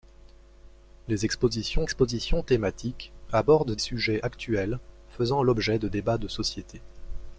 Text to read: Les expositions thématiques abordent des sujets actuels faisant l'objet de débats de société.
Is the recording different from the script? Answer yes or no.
yes